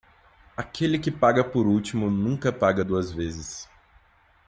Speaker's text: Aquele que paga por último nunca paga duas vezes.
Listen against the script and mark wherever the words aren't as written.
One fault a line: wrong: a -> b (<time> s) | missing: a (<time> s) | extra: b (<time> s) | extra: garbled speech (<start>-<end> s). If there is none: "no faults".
no faults